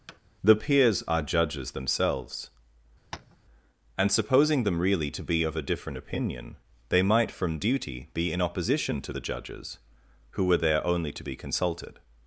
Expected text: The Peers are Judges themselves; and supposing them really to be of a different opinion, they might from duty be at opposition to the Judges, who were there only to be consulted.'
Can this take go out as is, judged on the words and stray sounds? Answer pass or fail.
fail